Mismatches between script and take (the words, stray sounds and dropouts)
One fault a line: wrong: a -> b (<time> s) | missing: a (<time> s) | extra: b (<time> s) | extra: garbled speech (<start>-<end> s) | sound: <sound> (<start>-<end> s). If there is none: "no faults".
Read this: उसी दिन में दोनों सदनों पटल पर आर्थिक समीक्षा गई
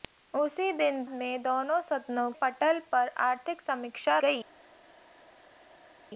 no faults